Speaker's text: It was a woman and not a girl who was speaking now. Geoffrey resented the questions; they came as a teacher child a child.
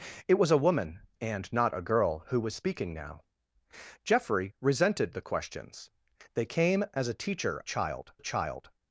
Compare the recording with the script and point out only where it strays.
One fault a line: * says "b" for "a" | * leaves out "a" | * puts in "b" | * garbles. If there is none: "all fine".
all fine